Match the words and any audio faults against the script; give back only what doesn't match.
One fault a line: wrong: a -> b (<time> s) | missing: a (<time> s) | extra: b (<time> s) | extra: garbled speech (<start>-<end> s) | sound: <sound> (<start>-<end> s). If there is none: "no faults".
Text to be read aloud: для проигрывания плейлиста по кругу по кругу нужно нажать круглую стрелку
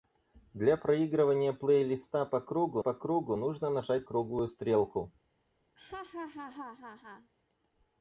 sound: laugh (5.8-7.3 s)